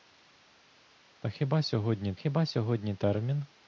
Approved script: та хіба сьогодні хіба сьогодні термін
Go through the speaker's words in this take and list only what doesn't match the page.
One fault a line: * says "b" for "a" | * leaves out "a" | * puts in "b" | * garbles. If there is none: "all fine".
all fine